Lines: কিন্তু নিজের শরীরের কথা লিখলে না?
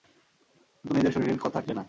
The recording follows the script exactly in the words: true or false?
true